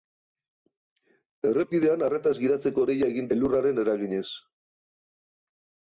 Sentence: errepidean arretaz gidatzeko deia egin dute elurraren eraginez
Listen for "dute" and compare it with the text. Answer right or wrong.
wrong